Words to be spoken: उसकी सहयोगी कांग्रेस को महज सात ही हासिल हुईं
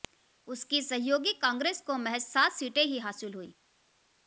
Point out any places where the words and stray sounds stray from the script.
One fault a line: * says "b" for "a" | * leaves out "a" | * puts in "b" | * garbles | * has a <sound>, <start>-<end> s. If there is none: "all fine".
* puts in "सीटें"